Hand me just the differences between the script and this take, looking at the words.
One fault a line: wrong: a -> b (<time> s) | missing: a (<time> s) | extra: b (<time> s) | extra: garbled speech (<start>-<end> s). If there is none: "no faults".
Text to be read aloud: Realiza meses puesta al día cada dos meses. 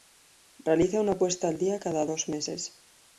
wrong: meses -> una (1.0 s)